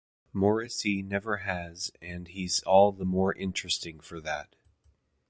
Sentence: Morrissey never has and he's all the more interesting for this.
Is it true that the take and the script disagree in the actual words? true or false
true